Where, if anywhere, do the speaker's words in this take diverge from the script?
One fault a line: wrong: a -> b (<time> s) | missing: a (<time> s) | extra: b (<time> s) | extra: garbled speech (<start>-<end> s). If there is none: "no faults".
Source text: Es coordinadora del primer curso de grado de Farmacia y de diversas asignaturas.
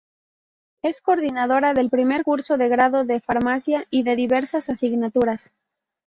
no faults